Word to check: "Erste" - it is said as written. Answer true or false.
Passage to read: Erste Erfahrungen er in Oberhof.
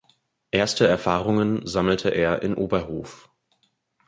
true